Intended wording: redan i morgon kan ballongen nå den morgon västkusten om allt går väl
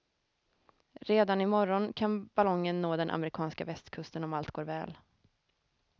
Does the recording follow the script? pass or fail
fail